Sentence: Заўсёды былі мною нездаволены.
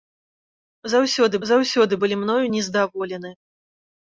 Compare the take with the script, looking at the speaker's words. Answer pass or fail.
fail